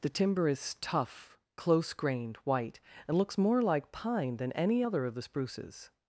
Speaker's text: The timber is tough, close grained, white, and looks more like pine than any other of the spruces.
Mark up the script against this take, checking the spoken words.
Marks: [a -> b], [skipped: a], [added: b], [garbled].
The timber is tough, close grained, white, and looks more like pine than any other of the spruces.